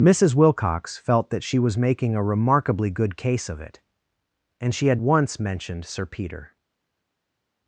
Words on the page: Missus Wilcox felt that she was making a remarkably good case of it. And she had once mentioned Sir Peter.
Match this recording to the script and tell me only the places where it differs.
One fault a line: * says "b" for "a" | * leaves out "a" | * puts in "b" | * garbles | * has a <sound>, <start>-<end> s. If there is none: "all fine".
all fine